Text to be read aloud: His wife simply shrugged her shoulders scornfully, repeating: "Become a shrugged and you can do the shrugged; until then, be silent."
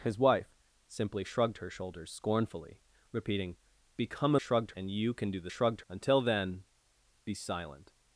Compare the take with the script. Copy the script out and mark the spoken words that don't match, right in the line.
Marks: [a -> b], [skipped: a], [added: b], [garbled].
His wife simply shrugged her shoulders scornfully, repeating: "Become a shrugged and you can do the shrugged; until then, be silent."